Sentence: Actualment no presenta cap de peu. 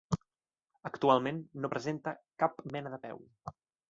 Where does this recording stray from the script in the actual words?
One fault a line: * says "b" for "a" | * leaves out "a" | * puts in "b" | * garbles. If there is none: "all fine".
* puts in "mena"